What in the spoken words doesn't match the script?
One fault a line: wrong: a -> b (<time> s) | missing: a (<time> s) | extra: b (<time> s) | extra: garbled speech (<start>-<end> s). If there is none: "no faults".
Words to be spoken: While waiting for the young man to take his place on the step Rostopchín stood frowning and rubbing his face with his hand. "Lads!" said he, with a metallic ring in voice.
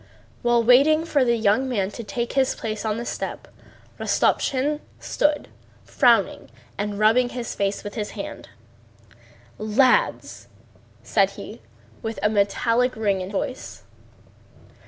no faults